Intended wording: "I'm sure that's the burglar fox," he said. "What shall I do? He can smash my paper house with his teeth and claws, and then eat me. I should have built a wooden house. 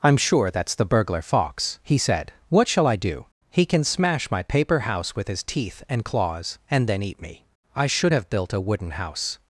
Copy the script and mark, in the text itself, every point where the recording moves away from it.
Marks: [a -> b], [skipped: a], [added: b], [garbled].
"I'm sure that's the burglar fox," he said. "What shall I do? He can smash my paper house with his teeth and claws, and then eat me. I should have built a wooden house.